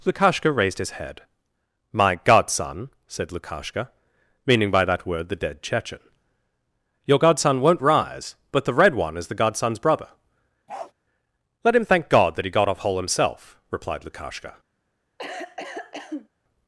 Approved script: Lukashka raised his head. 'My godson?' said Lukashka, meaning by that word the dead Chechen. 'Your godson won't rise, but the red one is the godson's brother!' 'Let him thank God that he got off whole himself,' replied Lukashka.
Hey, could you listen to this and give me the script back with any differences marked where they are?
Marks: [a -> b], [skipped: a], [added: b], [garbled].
Lukashka raised his head. 'My godson?' said Lukashka, meaning by that word the dead Chechen. 'Your godson won't rise, but the red one is the godson's brother!' 'Let him thank God that he got off whole himself,' replied Lukashka.